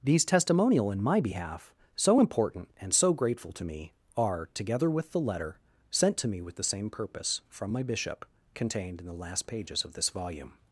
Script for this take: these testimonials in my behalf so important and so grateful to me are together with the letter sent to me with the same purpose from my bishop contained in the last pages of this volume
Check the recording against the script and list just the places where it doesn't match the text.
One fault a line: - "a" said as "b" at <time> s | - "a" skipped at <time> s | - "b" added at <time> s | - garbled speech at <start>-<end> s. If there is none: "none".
- "testimonials" said as "testimonial" at 0.2 s